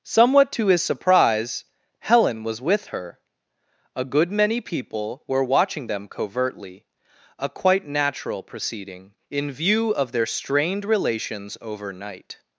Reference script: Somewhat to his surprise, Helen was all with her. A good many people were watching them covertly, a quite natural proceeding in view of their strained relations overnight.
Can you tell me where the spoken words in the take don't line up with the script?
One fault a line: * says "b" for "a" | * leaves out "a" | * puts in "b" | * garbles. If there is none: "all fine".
* leaves out "all"